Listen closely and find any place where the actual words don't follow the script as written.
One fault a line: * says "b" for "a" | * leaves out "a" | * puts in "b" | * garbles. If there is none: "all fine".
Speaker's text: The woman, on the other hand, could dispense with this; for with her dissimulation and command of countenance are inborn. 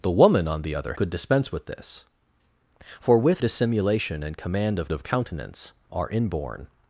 * leaves out "hand"
* leaves out "her"
* puts in "of"